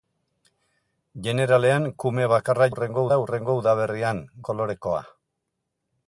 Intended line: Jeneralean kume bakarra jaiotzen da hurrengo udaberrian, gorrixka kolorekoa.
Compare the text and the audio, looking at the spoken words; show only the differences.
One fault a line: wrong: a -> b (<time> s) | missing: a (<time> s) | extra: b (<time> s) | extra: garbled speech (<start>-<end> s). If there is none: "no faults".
wrong: jaiotzen -> hurrengo (2.7 s)
missing: gorrixka (4.2 s)